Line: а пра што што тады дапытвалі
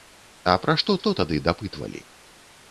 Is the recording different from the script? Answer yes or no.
no